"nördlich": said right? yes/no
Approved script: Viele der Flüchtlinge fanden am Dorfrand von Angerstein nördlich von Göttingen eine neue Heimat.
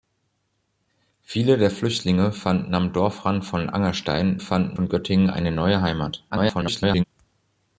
no